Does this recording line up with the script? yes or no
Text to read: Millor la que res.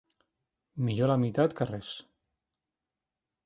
no